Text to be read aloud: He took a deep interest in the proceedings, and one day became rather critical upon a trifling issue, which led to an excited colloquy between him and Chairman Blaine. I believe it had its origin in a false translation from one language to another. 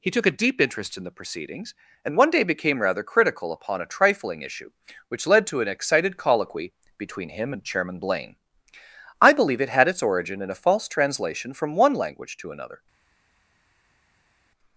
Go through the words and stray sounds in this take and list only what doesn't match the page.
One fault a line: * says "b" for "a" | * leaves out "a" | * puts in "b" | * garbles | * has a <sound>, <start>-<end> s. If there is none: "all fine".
all fine